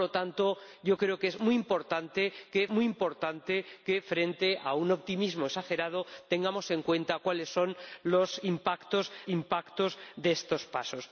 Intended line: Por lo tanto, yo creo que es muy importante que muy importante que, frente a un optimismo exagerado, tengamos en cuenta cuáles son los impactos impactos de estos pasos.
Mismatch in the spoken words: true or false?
false